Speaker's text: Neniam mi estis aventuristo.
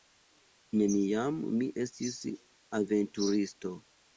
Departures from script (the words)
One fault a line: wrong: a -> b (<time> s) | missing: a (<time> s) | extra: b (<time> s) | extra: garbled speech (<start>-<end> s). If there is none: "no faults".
no faults